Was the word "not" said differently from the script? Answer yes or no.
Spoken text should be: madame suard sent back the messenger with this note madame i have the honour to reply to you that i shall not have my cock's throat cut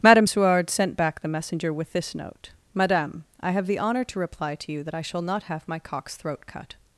no